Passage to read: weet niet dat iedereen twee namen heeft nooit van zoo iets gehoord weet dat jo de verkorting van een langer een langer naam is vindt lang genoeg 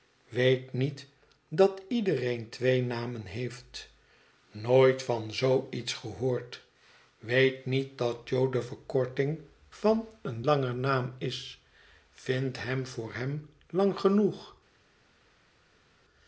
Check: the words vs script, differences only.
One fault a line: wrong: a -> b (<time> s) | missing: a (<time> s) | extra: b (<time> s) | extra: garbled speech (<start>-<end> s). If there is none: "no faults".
extra: niet (7.7 s)
missing: een langer (10.7 s)
extra: hem voor hem (12.6 s)